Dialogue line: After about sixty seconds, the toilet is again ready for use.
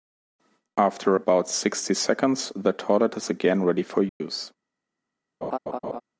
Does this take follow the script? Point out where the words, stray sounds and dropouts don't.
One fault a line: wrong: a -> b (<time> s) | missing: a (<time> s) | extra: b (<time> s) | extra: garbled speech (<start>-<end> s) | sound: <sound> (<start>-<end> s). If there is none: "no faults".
sound: dropout (4.1-4.2 s)
sound: laugh (5.4-6.0 s)